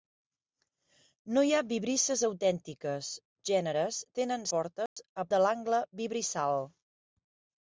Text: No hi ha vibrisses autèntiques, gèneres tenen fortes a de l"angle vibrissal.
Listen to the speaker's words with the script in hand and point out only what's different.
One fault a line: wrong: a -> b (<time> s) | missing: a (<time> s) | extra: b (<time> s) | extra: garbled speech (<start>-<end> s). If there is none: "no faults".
no faults